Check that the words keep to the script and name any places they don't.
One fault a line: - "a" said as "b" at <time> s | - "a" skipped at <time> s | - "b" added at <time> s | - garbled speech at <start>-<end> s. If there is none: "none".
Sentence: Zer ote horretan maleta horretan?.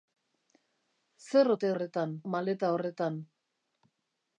none